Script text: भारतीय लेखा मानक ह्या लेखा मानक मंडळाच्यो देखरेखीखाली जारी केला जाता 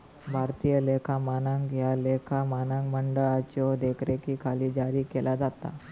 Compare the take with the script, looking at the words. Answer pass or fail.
pass